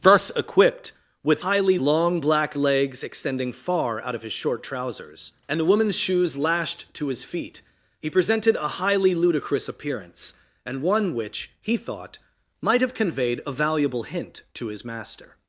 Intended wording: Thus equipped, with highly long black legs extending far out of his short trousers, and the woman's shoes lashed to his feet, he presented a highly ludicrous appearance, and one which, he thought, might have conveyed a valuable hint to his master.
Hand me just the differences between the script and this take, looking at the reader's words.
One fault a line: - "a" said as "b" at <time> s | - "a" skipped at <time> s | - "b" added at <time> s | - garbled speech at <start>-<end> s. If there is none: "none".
none